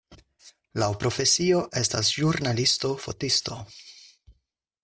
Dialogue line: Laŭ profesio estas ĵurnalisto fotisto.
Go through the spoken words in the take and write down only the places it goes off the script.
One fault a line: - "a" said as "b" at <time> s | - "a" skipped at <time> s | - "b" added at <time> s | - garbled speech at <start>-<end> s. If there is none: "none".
none